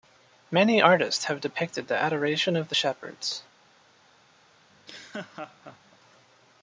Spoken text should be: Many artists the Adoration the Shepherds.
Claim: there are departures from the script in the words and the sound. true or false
true